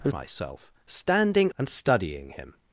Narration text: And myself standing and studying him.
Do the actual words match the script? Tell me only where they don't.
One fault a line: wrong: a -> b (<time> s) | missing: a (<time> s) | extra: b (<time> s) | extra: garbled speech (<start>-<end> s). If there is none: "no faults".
no faults